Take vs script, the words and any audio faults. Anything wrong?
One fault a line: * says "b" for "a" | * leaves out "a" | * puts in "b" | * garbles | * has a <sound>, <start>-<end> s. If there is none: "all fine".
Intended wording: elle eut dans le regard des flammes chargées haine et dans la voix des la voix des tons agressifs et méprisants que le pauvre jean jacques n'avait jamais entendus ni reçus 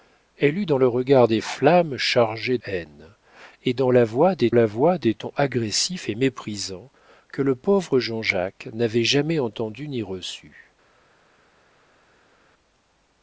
all fine